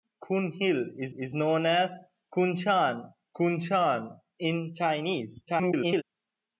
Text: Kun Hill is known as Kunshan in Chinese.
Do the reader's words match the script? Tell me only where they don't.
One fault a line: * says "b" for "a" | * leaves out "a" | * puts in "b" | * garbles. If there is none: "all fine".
* puts in "is"
* puts in "Kunshan"
* garbles